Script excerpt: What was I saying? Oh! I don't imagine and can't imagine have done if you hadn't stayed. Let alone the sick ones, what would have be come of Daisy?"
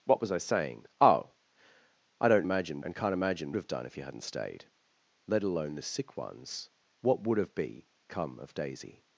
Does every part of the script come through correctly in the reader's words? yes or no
yes